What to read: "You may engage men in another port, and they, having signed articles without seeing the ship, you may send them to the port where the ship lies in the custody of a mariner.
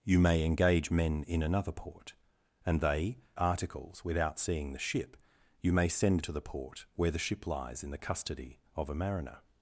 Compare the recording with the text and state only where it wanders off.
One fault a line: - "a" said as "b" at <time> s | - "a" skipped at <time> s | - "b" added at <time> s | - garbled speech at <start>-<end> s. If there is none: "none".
- "having signed" skipped at 3.2 s
- "them" skipped at 6.2 s